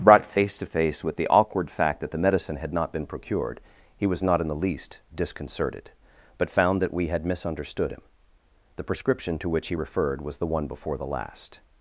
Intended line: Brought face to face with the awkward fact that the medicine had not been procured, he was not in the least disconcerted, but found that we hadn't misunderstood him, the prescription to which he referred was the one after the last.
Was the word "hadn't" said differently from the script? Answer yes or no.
yes